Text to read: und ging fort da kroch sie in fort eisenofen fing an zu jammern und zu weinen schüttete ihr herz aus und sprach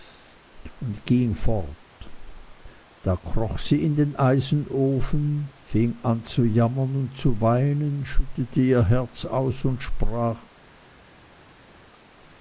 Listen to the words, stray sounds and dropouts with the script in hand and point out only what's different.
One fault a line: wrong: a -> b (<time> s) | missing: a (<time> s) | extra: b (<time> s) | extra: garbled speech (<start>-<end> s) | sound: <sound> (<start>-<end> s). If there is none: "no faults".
wrong: fort -> den (4.0 s)